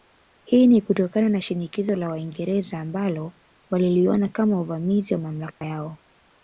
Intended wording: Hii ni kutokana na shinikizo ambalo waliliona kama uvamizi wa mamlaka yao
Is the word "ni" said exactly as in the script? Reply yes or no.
yes